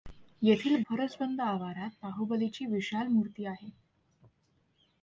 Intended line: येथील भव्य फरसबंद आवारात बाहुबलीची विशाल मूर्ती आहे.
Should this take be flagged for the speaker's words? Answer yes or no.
yes